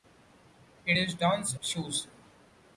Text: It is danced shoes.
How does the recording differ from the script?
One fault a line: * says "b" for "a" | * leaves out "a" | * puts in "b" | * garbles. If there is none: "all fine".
all fine